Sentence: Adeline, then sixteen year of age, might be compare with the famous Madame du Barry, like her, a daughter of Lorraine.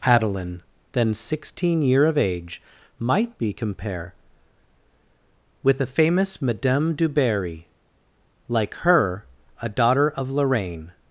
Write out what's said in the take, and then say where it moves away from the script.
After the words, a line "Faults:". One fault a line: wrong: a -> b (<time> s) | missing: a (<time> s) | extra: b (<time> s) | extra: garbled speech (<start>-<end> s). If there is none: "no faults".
Adeline, then sixteen year of age, might be compare with the famous Madame du Barry, like her, a daughter of Lorraine.
Faults:
no faults